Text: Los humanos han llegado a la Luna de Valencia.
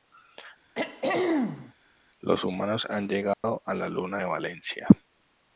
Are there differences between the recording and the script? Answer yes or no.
no